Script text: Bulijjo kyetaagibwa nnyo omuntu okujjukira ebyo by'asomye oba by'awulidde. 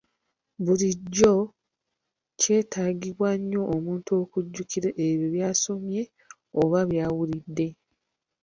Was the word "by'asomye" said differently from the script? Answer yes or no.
no